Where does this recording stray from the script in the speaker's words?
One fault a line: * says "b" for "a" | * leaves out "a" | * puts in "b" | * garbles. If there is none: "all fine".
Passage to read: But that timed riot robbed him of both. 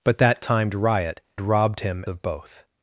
all fine